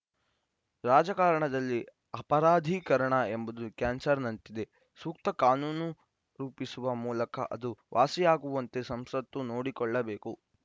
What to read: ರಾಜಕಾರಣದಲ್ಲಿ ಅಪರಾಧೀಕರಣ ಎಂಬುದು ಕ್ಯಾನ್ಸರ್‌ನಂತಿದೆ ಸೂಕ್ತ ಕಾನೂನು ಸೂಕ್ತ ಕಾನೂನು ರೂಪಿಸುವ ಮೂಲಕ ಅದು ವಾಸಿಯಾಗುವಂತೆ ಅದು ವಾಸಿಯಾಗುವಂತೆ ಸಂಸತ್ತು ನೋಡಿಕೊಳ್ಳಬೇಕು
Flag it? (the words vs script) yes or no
yes